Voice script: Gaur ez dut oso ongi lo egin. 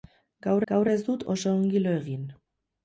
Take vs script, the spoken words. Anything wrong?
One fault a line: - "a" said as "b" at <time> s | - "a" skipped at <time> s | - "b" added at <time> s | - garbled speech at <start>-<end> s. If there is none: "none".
- "gaur" added at 0.7 s